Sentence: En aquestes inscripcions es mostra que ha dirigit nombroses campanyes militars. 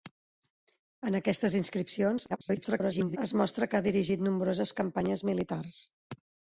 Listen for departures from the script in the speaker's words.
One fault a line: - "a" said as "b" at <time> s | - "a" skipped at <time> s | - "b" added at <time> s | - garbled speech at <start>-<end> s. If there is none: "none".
- garbled speech at 2.3-3.2 s